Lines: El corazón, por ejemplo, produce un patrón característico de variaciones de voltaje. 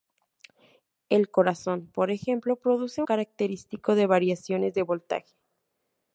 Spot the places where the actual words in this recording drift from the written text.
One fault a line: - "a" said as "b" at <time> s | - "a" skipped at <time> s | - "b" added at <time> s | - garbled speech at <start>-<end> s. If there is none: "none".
- "un patrón" skipped at 3.0 s